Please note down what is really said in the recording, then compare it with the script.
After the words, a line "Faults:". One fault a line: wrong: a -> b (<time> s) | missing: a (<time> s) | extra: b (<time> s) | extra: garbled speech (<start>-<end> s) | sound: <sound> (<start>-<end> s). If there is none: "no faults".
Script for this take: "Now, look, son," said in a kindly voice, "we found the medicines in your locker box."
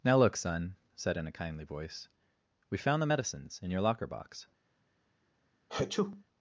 "Now, look, son," said in a kindly voice, "we found the medicines in your locker box."
Faults:
sound: sneeze (5.7-6.2 s)